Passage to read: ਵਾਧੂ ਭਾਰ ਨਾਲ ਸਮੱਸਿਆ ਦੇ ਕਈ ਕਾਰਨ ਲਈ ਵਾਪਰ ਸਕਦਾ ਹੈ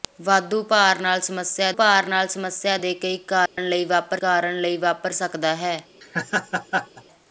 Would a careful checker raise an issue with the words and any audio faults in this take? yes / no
yes